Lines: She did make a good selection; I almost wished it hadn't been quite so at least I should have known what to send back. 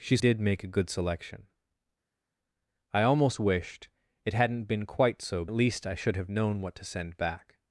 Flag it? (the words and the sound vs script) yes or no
no